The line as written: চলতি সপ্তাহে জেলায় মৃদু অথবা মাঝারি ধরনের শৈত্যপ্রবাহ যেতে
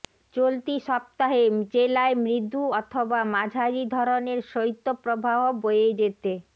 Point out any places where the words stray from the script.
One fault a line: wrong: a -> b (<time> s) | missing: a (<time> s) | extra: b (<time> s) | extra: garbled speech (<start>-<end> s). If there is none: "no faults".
extra: বয়ে (5.6 s)